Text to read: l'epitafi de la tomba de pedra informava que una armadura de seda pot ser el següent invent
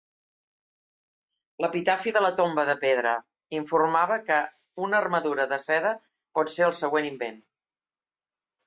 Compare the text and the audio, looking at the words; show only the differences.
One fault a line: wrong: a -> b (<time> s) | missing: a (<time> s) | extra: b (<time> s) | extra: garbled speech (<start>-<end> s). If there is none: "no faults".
no faults